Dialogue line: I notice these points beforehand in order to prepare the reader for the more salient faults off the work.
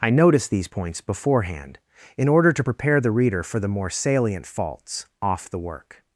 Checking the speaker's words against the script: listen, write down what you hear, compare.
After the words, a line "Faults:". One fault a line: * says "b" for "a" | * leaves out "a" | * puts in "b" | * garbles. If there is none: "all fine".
I notice these points beforehand in order to prepare the reader for the more salient faults off the work.
Faults:
all fine